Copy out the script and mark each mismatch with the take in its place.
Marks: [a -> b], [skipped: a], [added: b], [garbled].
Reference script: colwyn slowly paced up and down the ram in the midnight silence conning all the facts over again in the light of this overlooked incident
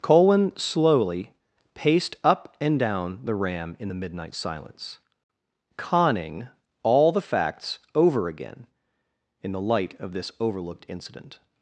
colwyn slowly paced up and down the ram in the midnight silence conning all the facts over again in the light of this overlooked incident